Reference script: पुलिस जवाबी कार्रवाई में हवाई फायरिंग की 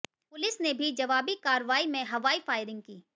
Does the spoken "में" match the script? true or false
true